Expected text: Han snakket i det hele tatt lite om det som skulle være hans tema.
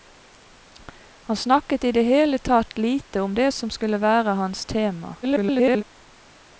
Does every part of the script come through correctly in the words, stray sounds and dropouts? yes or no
no